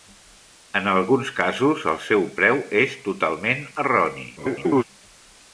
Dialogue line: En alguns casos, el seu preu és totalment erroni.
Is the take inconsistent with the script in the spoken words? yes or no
yes